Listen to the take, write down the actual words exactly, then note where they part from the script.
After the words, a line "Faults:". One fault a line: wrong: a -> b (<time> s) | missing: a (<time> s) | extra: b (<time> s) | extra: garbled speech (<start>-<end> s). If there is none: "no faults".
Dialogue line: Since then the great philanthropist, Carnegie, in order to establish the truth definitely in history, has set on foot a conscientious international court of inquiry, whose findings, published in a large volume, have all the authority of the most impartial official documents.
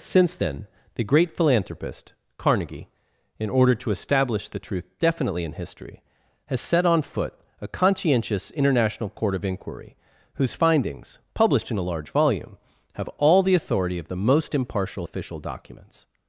Since then the great philanthropist, Carnegie, in order to establish the truth definitely in history, has set on foot a conscientious international court of inquiry, whose findings, published in a large volume, have all the authority of the most impartial official documents.
Faults:
no faults